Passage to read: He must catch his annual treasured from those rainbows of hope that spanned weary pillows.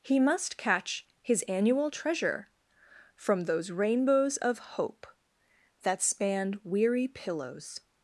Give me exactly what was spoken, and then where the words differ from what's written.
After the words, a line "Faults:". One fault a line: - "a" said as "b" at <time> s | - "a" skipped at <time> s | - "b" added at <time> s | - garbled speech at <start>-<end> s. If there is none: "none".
He must catch his annual treasure from those rainbows of hope that spanned weary pillows.
Faults:
- "treasured" said as "treasure" at 1.9 s